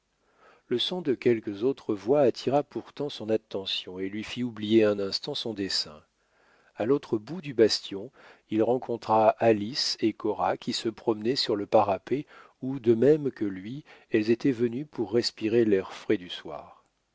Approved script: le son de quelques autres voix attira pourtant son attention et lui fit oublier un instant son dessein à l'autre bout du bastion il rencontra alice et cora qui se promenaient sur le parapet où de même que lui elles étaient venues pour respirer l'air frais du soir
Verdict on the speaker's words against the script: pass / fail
pass